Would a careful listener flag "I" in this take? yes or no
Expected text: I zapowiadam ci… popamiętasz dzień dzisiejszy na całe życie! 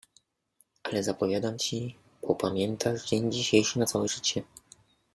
yes